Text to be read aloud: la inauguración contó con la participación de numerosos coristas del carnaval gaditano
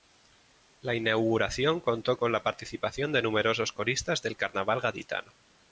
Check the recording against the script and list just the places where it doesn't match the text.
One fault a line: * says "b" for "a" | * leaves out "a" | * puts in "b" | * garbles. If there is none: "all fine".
all fine